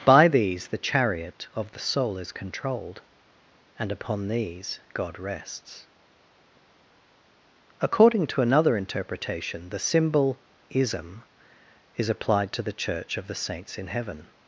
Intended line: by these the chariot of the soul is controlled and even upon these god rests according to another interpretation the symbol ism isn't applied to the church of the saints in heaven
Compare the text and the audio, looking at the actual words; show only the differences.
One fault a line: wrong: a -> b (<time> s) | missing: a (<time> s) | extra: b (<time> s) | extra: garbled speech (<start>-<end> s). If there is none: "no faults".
missing: even (3.9 s)
wrong: isn't -> is (12.0 s)